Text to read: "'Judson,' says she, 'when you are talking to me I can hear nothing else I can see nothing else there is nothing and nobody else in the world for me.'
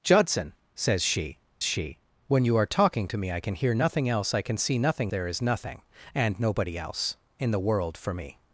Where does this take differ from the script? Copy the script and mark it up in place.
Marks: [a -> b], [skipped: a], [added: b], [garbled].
"'Judson,' says she, [added: she] 'when you are talking to me I can hear nothing else I can see nothing [skipped: else] there is nothing and nobody else in the world for me.'